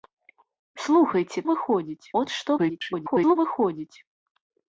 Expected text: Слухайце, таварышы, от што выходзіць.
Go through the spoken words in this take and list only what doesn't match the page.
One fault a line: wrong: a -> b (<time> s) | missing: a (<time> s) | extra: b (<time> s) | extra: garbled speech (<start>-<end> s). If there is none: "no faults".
wrong: таварышы -> выходзіць (1.5 s)
extra: garbled speech (2.6-3.4 s)